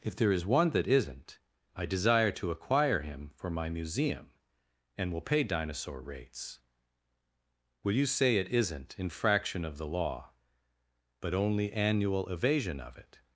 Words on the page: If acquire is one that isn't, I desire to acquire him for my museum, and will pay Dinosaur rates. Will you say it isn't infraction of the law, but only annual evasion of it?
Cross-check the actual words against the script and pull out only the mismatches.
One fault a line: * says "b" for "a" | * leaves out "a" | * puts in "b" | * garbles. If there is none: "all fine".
* says "there" for "acquire"